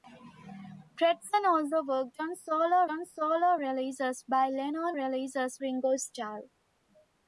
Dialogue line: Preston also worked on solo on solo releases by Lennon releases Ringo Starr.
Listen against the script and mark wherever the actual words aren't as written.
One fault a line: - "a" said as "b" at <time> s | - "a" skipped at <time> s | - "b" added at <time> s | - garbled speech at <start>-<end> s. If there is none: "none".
none